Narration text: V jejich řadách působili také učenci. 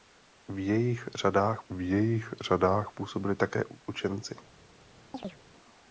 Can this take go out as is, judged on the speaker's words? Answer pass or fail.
fail